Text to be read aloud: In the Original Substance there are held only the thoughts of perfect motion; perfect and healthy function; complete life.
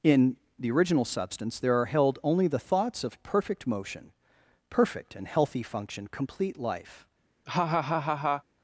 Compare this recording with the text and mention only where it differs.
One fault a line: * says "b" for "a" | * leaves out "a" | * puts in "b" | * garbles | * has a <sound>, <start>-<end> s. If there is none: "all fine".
* has a laugh, 7.5-8.4 s